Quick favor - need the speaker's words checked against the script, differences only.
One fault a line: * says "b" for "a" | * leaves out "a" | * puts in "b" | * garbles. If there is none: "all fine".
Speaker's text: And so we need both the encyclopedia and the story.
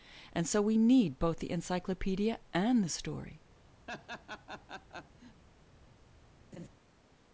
all fine